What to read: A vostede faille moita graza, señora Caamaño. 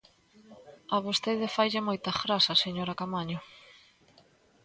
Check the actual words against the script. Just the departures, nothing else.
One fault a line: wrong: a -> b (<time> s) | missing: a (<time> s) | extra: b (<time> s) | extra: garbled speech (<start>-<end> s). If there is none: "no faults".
no faults